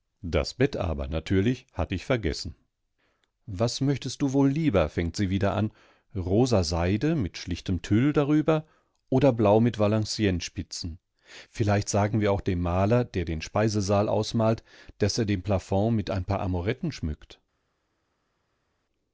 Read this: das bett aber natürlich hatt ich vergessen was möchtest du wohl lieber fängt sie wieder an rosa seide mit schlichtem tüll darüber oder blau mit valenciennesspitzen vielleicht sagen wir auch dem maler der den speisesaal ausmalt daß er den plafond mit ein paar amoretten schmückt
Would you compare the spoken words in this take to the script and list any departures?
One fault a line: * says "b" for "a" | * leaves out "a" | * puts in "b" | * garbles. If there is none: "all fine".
all fine